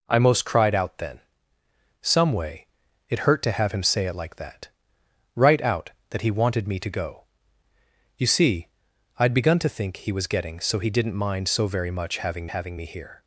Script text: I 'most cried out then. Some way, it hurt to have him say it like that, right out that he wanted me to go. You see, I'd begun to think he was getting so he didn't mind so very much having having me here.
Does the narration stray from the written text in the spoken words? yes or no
no